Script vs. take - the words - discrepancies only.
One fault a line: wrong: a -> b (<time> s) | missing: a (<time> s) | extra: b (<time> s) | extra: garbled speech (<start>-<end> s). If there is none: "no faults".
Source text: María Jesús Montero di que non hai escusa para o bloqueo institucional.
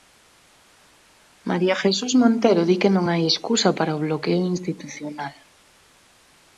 no faults